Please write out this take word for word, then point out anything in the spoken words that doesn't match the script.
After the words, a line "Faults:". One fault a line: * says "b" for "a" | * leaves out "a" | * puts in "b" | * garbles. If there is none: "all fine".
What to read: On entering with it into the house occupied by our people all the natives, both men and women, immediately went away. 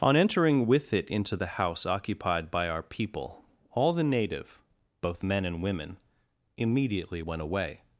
On entering with it into the house occupied by our people all the native, both men and women, immediately went away.
Faults:
* says "native" for "natives"